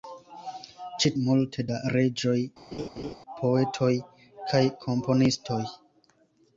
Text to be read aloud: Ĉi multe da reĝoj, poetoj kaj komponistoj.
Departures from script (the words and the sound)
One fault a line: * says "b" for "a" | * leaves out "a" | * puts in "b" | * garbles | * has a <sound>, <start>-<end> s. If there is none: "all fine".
* has a laugh, 2.7-3.2 s